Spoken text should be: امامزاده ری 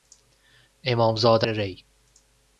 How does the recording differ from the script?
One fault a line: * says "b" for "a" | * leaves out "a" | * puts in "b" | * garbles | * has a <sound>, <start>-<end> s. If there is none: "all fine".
all fine